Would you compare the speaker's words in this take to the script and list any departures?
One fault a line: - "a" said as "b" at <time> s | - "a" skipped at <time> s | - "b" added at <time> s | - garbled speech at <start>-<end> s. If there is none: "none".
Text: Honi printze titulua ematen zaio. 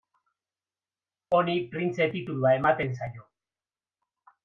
none